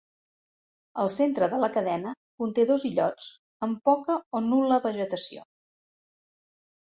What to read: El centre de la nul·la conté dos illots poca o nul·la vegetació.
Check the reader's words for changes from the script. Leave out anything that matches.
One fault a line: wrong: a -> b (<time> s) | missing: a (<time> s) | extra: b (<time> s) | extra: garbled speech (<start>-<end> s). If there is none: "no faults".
wrong: nul·la -> cadena (1.8 s)
extra: amb (3.7 s)